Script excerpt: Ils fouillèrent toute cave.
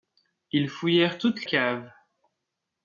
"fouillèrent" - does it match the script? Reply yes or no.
yes